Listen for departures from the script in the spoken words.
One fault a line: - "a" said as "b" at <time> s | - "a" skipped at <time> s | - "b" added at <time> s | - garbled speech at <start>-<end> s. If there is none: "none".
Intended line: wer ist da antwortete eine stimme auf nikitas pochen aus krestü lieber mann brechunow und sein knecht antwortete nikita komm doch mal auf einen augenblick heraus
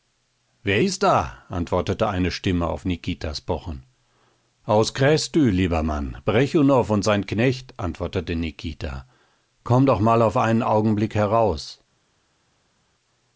none